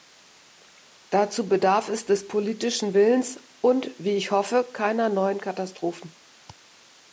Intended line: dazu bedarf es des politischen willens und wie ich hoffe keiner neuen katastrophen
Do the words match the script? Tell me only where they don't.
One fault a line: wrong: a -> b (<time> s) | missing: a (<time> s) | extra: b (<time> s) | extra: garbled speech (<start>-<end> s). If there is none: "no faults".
no faults